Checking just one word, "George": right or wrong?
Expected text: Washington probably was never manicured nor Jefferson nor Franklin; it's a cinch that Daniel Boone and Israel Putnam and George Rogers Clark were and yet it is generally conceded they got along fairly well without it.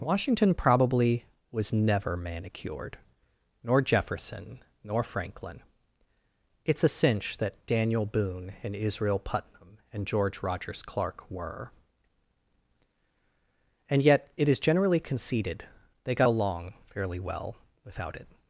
right